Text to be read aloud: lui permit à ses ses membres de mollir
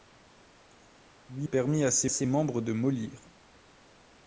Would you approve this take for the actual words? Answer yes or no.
yes